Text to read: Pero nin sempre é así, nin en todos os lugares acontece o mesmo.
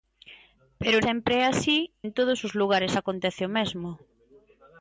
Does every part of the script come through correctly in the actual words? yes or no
no